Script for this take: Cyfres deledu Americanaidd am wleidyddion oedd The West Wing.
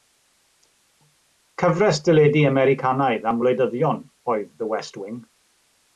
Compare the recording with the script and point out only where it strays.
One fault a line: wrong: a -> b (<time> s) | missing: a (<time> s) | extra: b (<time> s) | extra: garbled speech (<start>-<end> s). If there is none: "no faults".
no faults